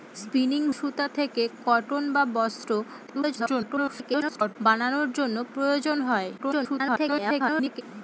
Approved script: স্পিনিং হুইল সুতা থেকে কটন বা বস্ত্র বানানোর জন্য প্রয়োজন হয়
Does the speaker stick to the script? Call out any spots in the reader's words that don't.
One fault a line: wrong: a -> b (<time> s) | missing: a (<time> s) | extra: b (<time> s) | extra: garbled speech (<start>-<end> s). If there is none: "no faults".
missing: হুইল (0.6 s)
extra: garbled speech (3.1-4.6 s)
extra: garbled speech (6.4-7.8 s)